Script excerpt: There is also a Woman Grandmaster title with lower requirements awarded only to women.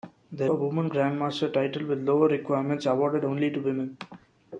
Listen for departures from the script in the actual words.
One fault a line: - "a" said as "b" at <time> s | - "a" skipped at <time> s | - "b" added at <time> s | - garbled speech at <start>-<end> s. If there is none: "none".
- "is also" skipped at 0.5 s